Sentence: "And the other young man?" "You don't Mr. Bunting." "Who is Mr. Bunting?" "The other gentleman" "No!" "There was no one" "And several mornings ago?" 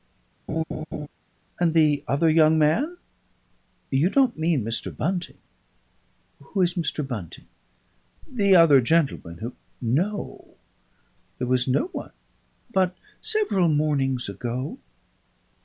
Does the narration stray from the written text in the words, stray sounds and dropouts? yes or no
yes